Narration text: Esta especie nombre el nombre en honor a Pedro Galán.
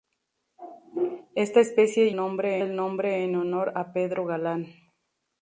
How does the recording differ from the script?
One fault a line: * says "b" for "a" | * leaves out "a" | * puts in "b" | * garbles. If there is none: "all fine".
all fine